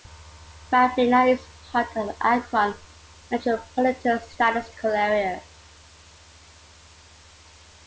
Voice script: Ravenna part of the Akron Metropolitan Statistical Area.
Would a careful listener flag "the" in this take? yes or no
no